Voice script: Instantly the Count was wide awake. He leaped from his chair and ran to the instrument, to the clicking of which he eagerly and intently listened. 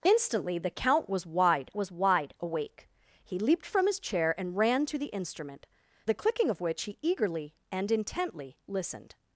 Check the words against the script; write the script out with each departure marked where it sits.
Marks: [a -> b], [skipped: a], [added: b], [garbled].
Instantly the Count was wide [added: was wide] awake. He leaped from his chair and ran to the instrument, [skipped: to] the clicking of which he eagerly and intently listened.